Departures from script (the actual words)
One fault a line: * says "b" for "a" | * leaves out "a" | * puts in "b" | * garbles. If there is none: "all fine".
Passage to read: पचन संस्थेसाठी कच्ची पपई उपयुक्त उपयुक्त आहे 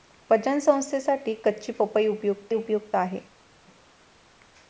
all fine